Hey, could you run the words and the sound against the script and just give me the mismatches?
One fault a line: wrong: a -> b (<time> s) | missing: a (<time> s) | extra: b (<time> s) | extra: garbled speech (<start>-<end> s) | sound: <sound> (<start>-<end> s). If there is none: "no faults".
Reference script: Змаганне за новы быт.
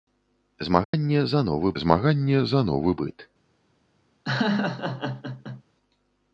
sound: dropout (0.8-0.9 s)
extra: змаганне за новы (1.8 s)
sound: laugh (4.3-5.6 s)